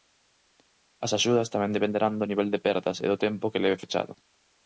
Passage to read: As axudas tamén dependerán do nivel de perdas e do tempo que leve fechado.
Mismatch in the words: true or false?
false